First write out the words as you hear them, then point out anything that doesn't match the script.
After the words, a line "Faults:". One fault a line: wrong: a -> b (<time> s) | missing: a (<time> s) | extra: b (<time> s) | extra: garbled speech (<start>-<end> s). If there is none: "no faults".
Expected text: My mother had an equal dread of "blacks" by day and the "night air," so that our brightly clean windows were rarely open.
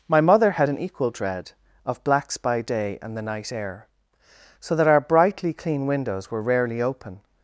My mother had an equal dread of "blacks" by day and the "night air," so that our brightly clean windows were rarely open.
Faults:
no faults